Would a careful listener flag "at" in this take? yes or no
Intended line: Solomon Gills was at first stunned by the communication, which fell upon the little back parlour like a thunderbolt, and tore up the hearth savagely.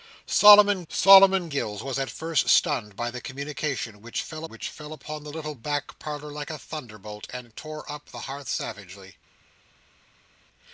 no